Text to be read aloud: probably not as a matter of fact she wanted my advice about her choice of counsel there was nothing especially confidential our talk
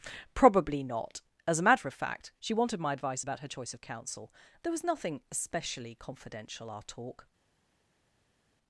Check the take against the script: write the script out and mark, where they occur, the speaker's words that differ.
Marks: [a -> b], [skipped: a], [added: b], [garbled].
probably not as a matter of fact she wanted my advice about her choice of counsel there was nothing especially confidential our talk